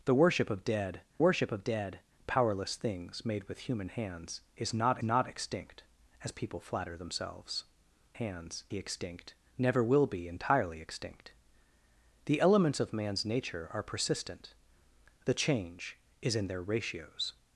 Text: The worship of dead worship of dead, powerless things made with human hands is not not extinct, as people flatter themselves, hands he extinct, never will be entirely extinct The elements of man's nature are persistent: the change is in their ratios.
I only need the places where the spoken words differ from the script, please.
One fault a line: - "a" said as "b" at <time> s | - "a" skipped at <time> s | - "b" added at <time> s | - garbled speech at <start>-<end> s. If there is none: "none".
none